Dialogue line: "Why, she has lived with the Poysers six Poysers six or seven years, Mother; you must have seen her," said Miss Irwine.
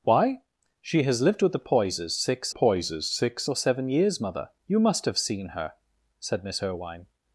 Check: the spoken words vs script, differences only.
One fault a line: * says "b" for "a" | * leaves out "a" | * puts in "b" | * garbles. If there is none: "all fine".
all fine